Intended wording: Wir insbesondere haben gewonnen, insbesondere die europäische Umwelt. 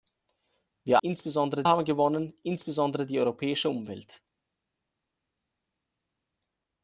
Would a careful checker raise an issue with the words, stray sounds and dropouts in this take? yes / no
no